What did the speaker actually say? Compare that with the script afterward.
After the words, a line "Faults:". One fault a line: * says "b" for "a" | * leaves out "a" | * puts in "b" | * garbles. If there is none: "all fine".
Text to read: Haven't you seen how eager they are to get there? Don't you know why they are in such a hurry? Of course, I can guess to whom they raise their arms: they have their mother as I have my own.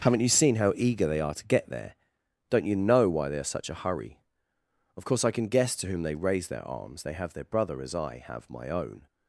Haven't you seen how eager they are to get there? Don't you know why they are such a hurry? Of course, I can guess to whom they raise their arms: they have their brother as I have my own.
Faults:
* leaves out "in"
* says "brother" for "mother"